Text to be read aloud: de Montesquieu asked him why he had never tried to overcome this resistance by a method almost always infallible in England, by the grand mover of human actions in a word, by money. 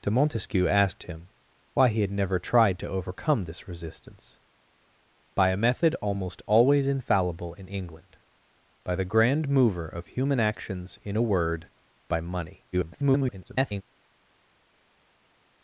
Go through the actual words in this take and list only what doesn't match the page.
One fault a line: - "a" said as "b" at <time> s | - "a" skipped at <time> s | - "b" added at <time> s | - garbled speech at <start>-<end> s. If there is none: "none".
- garbled speech at 12.7-13.8 s